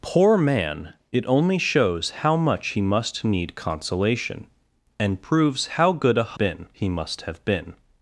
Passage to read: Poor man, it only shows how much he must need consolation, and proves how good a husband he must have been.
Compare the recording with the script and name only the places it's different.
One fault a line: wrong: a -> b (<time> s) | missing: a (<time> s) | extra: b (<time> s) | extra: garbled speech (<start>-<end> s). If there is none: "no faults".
wrong: husband -> been (6.4 s)